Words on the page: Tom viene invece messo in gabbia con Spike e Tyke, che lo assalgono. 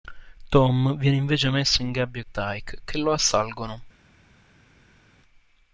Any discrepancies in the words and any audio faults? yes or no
yes